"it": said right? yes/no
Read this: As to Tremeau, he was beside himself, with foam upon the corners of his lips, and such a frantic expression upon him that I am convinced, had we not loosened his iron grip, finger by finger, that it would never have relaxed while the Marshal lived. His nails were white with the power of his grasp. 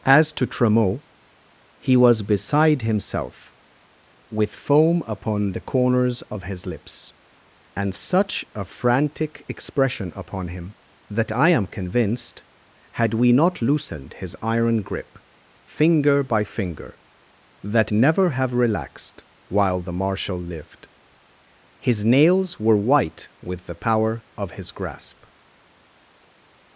no